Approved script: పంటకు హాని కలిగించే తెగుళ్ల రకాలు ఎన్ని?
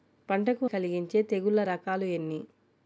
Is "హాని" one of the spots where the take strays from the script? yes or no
yes